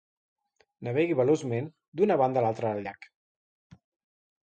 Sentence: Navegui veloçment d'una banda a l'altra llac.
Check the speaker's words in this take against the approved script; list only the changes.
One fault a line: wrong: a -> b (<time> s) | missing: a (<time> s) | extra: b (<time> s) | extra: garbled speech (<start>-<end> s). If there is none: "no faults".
extra: del (2.8 s)